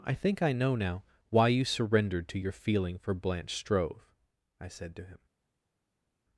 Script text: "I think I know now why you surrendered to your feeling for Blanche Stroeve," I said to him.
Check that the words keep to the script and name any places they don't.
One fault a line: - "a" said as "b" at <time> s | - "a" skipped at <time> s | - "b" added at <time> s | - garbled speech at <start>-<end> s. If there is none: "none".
none